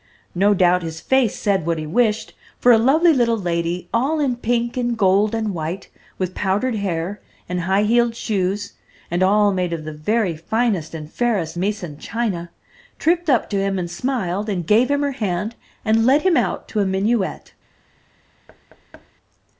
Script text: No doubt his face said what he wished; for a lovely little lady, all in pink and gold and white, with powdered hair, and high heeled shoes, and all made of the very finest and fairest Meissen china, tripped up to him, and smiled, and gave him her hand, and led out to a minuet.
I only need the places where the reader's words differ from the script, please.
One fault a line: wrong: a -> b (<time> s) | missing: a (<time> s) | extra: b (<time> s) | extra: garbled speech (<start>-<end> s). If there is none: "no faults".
extra: him (16.2 s)